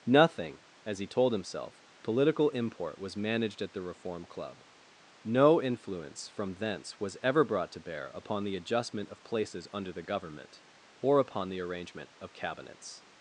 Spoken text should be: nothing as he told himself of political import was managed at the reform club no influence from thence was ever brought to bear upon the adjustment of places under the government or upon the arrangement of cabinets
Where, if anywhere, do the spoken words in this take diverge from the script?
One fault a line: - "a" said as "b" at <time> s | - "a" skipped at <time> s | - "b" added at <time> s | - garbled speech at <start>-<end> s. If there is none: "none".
- "of" skipped at 1.8 s